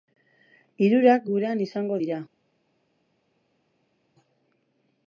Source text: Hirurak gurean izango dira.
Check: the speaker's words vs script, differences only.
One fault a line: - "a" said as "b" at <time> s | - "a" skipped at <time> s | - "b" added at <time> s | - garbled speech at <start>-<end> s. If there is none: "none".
none